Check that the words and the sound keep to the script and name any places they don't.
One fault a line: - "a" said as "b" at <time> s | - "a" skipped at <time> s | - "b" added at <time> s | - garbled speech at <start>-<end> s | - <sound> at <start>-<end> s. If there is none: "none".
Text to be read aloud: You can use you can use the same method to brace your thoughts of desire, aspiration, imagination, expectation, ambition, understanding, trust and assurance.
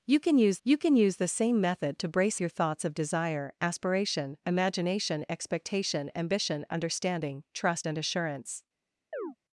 - chirp at 9.1-9.4 s